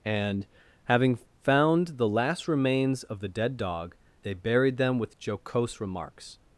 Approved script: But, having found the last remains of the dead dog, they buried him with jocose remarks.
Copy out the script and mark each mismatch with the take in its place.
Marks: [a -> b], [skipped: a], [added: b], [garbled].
[But, -> And] having found the last remains of the dead dog, they buried [him -> them] with jocose remarks.